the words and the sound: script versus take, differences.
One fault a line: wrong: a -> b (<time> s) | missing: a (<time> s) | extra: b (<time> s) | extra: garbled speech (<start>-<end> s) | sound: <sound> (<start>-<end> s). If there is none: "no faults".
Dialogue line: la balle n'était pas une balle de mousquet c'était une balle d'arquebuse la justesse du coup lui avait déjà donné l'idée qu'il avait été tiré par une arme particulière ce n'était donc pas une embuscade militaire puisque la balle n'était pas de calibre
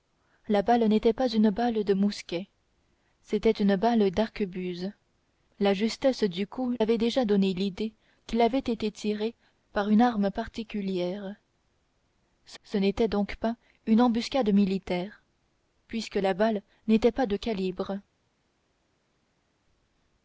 missing: lui (6.7 s)
extra: ce (12.6 s)